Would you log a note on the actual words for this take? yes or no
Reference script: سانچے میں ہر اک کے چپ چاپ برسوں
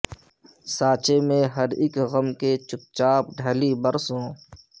yes